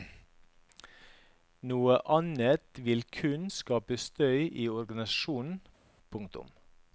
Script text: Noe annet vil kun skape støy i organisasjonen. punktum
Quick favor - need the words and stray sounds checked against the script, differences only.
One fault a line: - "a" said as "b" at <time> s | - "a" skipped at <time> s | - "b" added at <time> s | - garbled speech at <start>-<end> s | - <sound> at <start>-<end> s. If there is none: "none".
none